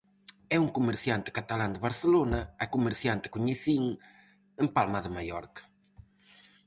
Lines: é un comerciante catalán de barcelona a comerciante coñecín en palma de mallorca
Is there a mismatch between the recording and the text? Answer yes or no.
no